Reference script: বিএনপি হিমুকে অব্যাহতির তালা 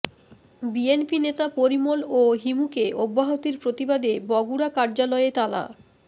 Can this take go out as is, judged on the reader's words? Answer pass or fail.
fail